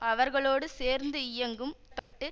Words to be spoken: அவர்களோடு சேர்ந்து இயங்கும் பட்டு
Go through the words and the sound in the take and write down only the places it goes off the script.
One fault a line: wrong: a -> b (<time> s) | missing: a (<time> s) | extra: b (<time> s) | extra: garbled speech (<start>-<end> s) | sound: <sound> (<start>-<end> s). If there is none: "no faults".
sound: dropout (2.0-2.1 s)